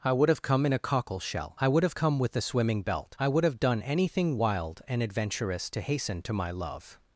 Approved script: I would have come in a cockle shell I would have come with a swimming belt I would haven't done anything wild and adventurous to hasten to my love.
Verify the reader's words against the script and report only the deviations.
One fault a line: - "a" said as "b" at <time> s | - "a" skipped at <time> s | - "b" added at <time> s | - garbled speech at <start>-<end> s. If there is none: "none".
- "haven't" said as "have" at 3.4 s